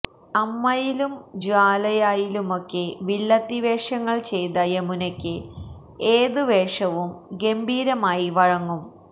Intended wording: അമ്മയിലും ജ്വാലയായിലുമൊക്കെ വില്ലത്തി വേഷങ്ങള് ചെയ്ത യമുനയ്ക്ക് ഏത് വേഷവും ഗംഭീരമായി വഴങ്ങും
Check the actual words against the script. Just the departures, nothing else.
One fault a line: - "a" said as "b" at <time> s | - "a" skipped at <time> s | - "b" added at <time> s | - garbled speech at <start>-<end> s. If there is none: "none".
none